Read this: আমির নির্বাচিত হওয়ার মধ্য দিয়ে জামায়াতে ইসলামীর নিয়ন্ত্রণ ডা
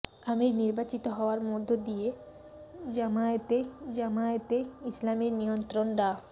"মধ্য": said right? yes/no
yes